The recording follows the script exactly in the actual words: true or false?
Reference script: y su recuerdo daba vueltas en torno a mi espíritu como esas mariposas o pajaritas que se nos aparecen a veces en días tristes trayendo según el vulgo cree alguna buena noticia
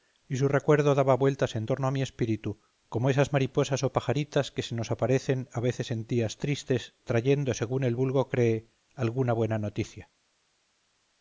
true